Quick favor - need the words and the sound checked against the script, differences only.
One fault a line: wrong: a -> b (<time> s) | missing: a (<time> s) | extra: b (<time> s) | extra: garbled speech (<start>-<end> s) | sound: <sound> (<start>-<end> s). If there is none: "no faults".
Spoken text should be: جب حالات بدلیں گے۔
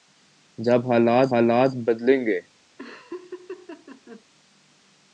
extra: حالات (1.3 s)
sound: laugh (2.8-4.2 s)